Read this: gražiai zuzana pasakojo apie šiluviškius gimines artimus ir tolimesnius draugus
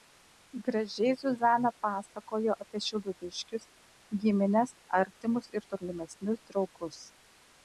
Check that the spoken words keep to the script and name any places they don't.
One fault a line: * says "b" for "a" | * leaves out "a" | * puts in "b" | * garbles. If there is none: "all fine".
all fine